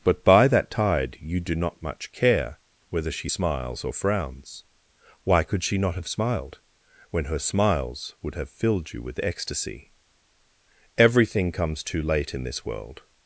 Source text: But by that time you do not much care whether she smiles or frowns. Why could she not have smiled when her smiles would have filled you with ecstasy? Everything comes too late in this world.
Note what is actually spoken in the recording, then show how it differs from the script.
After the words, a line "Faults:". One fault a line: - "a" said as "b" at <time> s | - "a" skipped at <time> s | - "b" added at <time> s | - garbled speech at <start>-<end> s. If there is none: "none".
But by that tide you do not much care whether she smiles or frowns. Why could she not have smiled when her smiles would have filled you with ecstasy? Everything comes too late in this world.
Faults:
- "time" said as "tide" at 0.7 s